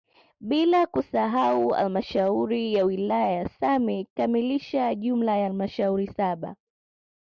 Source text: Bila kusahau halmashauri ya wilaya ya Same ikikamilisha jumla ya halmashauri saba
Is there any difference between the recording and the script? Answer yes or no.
no